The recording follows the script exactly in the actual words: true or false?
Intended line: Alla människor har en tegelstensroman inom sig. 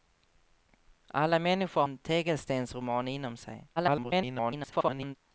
false